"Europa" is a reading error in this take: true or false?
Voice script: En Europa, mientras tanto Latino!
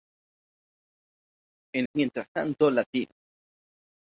true